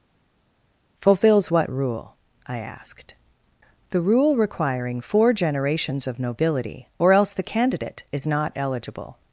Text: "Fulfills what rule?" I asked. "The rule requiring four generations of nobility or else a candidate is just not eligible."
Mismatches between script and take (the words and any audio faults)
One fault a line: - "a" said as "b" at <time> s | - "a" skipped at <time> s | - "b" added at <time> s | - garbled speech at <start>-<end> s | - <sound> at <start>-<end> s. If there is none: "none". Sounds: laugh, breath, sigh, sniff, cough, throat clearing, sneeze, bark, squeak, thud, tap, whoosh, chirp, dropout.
- "a" said as "the" at 7.3 s
- "just" skipped at 8.3 s